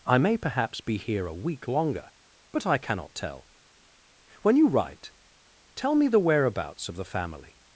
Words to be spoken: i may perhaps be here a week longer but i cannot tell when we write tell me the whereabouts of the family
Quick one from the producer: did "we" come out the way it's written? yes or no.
no